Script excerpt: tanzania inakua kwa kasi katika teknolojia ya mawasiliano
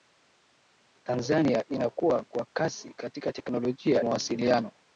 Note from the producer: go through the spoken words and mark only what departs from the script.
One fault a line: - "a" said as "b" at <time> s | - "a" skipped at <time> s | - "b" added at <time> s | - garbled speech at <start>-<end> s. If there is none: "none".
- "ya" skipped at 4.0 s